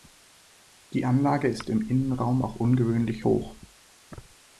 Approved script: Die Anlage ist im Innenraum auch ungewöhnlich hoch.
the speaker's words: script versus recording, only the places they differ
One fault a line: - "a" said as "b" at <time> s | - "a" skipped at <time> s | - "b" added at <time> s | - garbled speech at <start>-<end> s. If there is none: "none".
none